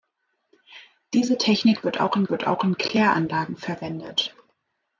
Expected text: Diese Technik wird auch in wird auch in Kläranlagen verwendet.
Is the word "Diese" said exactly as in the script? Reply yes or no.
yes